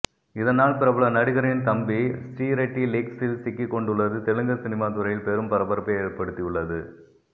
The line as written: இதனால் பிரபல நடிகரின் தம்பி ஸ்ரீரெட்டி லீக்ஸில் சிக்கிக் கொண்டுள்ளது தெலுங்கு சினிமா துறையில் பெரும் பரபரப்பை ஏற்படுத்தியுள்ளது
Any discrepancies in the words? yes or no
no